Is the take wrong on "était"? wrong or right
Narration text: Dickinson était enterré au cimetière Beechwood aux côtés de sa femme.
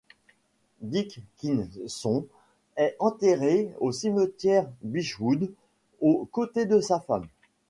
wrong